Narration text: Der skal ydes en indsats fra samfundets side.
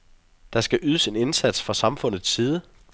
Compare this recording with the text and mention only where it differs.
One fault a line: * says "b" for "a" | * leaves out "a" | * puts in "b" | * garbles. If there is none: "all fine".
all fine